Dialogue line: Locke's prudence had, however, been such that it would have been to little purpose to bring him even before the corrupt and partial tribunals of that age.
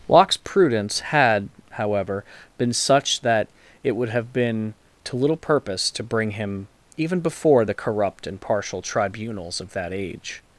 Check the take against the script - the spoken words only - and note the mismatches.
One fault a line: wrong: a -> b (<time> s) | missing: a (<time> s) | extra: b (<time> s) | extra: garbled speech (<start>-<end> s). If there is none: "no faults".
no faults